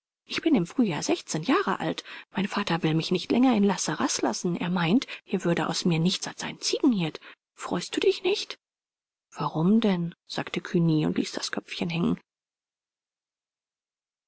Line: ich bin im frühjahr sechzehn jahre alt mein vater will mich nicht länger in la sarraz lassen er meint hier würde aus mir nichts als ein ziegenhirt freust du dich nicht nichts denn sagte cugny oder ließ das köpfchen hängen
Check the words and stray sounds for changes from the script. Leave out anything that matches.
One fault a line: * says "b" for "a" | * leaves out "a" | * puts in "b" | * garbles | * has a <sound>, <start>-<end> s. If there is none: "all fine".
* says "warum" for "nichts"
* says "und" for "oder"